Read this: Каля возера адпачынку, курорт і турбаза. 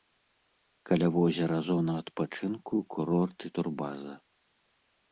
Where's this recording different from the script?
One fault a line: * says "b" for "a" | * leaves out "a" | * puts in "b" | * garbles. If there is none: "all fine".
* puts in "зона"